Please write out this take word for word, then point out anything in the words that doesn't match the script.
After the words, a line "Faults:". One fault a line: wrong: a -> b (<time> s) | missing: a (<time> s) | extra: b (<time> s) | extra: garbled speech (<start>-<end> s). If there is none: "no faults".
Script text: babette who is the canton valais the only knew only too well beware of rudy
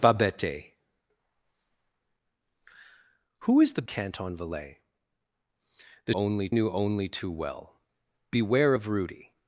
babette who is the canton valais the only knew only too well beware of rudy
Faults:
no faults